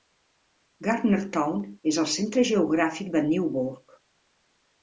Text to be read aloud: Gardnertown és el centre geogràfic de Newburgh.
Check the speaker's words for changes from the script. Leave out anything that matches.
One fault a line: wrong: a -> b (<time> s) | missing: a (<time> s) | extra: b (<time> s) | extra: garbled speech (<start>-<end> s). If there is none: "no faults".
no faults